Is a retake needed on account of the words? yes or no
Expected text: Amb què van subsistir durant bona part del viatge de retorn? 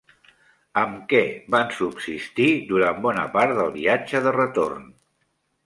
no